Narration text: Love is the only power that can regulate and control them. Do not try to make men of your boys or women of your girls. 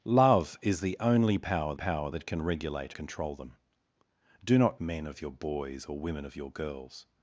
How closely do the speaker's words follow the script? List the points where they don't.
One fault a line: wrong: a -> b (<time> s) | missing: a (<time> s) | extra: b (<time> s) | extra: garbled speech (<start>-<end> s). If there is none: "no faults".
extra: power (1.7 s)
missing: and (2.9 s)
missing: try to make (4.8 s)